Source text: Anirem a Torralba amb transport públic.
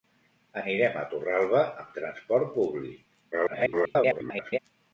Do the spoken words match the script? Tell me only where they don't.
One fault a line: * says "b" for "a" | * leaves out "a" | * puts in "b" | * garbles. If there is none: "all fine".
* garbles